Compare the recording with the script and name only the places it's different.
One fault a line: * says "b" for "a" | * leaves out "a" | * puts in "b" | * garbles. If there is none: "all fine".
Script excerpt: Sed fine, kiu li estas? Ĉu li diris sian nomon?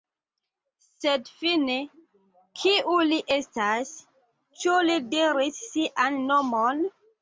all fine